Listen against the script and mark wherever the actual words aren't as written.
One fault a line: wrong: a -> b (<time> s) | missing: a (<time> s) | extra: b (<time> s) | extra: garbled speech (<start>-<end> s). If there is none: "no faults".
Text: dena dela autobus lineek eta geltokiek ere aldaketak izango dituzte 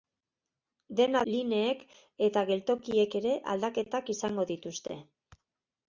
missing: dela autobus (1.2 s)